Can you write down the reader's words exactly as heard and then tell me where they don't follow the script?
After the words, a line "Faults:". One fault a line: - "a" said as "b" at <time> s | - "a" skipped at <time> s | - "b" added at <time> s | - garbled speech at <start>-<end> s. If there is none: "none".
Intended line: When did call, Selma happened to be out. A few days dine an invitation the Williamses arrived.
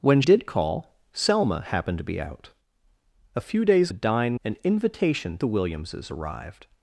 When did call, Selma happened to be out. A few days dine an invitation the Williamses arrived.
Faults:
none